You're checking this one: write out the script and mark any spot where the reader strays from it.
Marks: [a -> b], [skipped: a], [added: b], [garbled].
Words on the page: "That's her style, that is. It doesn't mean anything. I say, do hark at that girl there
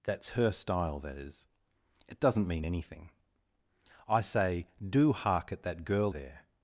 "That's her style, that is. It doesn't mean anything. I say, do hark at that girl there